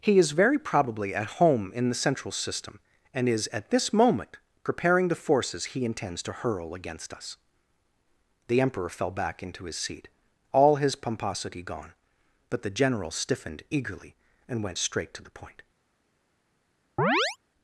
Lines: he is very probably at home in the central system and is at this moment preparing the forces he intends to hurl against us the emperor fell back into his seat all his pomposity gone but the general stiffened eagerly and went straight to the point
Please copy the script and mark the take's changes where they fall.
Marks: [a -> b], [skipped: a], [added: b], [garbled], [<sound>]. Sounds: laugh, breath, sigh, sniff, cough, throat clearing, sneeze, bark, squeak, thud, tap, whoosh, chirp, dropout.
he is very probably at home in the central system and is at this moment preparing the forces he intends to hurl against us the emperor fell back into his seat all his pomposity gone but the general stiffened eagerly and went straight to the point [chirp]